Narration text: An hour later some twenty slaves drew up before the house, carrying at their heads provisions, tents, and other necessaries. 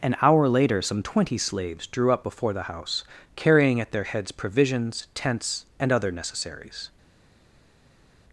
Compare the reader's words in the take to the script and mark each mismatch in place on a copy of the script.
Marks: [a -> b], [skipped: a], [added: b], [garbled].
An hour later some twenty slaves drew up before the house, carrying at their heads provisions, tents, and other necessaries.